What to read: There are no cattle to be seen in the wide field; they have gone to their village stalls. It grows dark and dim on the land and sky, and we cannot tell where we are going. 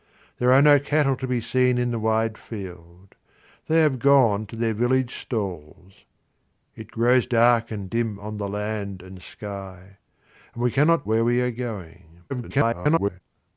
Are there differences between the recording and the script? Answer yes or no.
yes